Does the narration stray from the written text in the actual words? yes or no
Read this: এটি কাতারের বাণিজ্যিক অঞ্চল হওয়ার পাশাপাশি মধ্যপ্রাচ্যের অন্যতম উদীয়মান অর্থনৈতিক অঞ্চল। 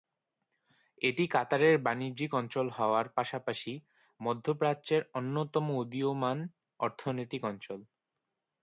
no